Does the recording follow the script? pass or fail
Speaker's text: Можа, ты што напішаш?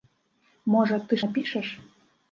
fail